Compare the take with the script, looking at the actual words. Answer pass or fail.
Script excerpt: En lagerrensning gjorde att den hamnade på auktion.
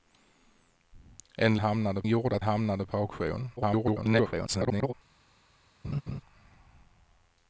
fail